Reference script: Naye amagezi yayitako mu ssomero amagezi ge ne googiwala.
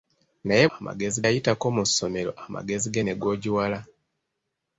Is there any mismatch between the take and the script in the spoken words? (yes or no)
no